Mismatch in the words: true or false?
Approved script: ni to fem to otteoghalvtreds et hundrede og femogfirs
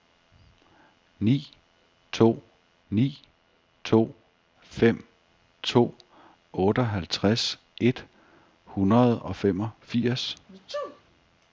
true